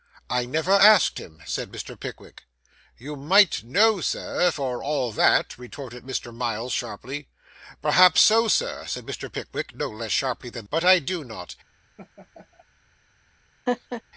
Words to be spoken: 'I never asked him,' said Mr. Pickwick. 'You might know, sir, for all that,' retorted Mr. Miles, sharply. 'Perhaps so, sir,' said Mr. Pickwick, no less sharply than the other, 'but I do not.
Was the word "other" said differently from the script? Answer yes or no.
yes